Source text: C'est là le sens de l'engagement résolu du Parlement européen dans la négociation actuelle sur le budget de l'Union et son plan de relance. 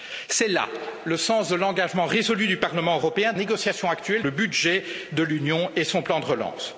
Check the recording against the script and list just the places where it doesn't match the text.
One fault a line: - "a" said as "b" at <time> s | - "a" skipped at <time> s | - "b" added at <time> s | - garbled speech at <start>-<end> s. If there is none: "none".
- "dans la" skipped at 3.3 s
- "sur" skipped at 4.3 s